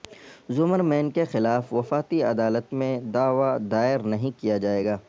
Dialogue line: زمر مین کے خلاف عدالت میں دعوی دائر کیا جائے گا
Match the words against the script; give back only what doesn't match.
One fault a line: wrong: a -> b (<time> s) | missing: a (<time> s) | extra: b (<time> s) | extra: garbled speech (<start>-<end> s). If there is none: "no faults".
extra: وفاقی (1.7 s)
extra: نہیں (4.0 s)